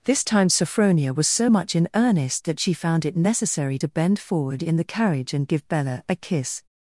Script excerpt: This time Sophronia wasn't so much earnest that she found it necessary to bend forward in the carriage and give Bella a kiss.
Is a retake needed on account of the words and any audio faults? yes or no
yes